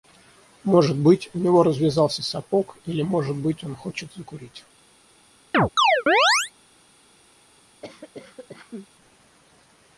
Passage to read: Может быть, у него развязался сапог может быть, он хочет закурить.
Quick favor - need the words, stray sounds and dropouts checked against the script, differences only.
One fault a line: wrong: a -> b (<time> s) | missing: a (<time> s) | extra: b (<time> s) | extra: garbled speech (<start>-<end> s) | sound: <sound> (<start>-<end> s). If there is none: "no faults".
extra: или (2.9 s)
sound: chirp (5.5-6.5 s)
sound: cough (7.8-8.9 s)